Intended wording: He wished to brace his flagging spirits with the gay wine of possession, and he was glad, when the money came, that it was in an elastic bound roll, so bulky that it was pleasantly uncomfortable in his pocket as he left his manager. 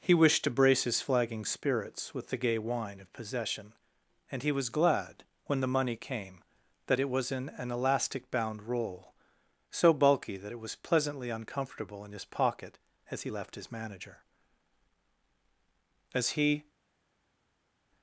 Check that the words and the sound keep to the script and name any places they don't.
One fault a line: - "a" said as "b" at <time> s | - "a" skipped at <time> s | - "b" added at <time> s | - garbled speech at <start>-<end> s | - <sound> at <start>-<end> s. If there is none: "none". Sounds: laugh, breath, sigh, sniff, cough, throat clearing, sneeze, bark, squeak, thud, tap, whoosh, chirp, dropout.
- "As he" added at 16.1 s